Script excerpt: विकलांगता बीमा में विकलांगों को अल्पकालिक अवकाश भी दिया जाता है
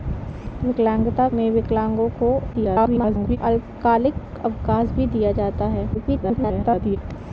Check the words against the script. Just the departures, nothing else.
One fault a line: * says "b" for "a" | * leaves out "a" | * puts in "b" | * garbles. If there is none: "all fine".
* leaves out "बीमा"
* garbles
* garbles